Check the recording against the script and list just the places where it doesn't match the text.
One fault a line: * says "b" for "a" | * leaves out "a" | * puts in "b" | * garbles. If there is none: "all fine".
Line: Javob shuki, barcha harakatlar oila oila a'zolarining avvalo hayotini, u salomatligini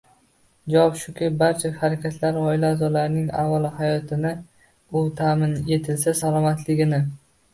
* leaves out "oila"
* puts in "ta'min etilsa"